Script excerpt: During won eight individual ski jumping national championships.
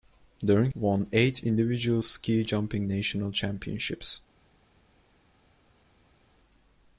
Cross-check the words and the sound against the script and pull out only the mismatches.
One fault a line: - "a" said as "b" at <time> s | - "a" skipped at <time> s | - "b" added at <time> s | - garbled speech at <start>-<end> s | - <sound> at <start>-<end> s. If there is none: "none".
none